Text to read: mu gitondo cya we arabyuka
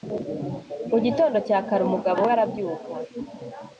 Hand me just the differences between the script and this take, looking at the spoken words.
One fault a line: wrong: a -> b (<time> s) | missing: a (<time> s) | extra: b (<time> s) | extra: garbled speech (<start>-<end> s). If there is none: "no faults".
extra: kare umugabo (1.7 s)